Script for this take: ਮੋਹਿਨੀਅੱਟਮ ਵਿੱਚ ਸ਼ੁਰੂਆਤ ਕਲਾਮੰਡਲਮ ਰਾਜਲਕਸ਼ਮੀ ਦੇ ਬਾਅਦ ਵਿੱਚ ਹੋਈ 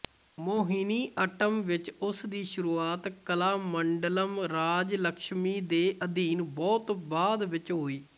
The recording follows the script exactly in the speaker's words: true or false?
false